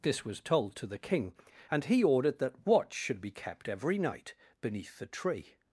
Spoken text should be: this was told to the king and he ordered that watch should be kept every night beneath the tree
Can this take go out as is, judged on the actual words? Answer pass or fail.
pass